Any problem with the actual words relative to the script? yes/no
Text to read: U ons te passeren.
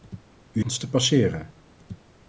no